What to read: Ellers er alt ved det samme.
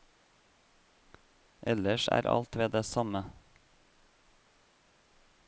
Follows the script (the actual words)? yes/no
yes